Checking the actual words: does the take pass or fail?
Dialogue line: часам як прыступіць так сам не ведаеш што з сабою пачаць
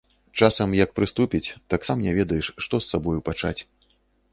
pass